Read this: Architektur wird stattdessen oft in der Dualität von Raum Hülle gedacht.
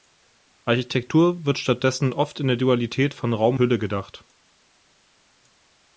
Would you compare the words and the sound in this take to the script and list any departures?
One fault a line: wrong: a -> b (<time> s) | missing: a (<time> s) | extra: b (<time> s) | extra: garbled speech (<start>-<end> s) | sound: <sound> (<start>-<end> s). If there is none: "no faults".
no faults